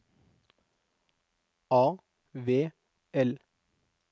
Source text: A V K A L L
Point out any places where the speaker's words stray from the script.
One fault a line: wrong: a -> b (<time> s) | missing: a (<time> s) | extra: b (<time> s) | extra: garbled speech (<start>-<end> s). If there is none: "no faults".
missing: K A L (2.7 s)